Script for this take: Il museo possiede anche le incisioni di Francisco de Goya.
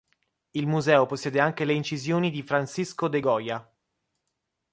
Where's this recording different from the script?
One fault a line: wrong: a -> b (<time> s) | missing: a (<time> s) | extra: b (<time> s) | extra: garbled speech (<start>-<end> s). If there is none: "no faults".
no faults